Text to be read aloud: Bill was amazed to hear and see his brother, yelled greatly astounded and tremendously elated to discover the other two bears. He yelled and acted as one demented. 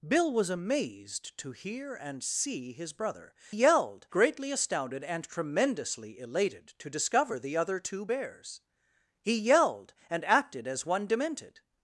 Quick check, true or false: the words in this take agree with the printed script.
true